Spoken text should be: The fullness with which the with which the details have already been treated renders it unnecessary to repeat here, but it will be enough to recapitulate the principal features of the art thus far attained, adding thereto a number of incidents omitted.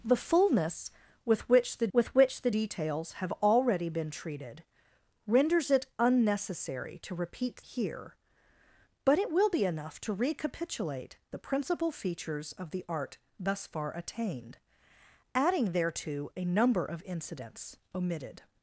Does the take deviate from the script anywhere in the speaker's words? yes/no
no